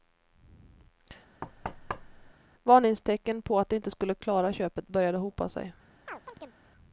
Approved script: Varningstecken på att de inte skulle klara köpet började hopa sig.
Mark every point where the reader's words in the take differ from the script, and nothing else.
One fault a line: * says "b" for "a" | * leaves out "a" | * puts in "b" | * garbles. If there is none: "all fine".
all fine